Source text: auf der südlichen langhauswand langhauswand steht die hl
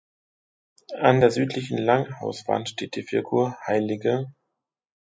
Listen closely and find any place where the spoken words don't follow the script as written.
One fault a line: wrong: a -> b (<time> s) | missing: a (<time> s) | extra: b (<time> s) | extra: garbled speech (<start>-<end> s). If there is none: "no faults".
wrong: auf -> an (1.0 s)
missing: langhauswand (2.7 s)
extra: figur (3.0 s)